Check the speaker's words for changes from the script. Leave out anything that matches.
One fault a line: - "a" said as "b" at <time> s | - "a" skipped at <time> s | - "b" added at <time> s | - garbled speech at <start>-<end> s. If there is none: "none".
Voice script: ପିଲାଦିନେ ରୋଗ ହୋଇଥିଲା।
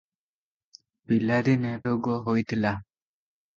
none